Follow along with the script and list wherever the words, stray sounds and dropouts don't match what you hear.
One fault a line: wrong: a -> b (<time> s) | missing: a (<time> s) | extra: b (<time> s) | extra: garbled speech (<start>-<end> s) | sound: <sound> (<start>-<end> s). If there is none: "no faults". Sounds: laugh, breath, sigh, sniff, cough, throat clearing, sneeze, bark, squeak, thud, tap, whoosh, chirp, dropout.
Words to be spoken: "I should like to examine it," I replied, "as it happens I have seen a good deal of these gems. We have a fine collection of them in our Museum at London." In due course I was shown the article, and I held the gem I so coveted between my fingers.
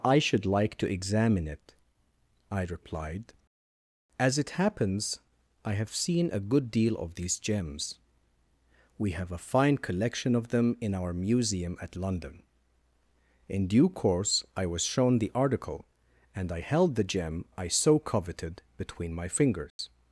sound: dropout (19.7-19.8 s)